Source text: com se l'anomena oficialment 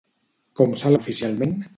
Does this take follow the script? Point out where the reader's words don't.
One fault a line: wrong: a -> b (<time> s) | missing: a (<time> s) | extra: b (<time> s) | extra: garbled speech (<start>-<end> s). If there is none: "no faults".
missing: l'anomena (0.9 s)